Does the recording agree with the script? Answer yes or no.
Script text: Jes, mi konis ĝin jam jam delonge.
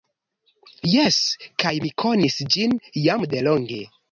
no